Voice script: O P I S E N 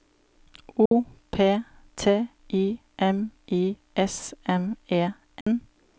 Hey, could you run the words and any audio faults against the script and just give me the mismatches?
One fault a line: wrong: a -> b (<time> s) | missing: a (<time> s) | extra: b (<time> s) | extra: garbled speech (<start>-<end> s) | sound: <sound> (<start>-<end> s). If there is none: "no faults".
sound: dropout (0.9-0.9 s)
extra: T (1.9 s)
extra: M I (3.0 s)
extra: M (4.5 s)
sound: dropout (5.4-5.5 s)